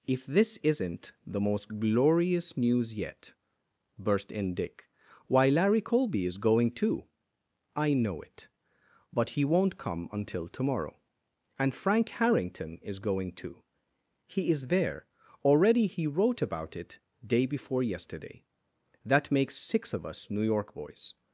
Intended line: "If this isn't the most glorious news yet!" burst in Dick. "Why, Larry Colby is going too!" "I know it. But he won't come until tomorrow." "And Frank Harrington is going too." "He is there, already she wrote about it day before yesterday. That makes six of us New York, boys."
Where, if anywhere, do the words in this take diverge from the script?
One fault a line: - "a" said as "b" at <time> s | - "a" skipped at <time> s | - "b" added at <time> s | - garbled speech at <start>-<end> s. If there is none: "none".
- "she" said as "he" at 15.9 s